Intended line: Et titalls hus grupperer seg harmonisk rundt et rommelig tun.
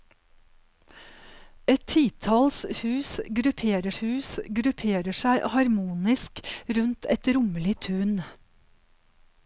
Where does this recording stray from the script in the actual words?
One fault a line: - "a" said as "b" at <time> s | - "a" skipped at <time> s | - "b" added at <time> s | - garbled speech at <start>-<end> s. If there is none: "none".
- "hus grupperer" added at 4.0 s